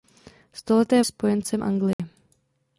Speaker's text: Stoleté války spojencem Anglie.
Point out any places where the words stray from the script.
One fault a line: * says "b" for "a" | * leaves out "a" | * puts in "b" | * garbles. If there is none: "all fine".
* leaves out "války"